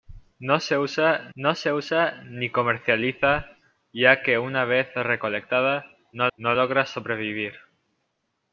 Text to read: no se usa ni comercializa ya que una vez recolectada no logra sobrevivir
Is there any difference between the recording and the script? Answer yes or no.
yes